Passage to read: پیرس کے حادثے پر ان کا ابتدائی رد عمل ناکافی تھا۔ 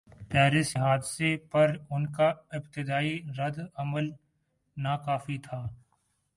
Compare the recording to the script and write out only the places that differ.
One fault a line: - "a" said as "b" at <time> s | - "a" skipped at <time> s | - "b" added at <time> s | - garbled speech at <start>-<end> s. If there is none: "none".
- "کے" skipped at 0.8 s